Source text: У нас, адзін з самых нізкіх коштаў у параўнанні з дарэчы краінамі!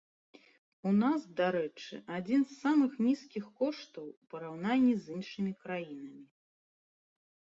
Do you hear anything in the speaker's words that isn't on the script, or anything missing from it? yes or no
yes